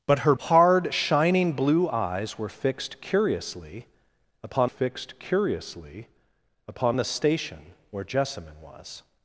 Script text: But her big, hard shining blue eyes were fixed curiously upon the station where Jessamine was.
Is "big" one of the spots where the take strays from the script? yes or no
yes